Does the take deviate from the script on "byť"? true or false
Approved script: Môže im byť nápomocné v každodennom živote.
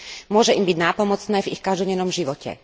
false